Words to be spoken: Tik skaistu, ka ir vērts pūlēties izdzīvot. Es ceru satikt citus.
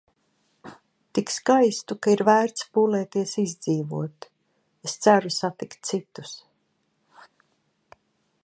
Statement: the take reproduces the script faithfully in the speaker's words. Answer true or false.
true